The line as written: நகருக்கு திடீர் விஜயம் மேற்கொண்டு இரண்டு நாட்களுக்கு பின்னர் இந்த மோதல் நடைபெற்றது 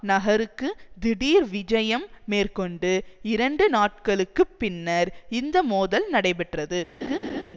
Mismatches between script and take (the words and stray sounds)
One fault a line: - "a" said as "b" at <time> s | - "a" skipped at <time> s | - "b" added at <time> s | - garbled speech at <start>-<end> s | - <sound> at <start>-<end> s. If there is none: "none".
- laugh at 7.0-7.4 s